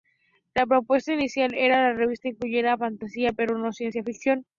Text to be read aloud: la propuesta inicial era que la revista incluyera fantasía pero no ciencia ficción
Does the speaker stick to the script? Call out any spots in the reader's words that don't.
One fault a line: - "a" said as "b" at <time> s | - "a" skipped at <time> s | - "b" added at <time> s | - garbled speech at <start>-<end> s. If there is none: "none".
none